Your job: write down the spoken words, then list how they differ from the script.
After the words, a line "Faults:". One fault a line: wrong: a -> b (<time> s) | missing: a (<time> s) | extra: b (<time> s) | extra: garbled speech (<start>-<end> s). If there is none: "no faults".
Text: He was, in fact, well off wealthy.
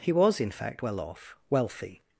He was, in fact, well off wealthy.
Faults:
no faults